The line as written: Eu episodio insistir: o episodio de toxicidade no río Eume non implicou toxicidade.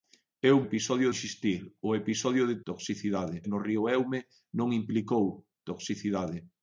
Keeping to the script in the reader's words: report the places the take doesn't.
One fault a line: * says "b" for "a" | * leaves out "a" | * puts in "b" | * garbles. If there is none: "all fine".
all fine